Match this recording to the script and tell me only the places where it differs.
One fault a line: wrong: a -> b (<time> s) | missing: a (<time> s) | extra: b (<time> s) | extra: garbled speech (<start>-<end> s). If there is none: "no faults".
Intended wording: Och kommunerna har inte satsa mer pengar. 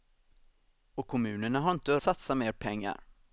no faults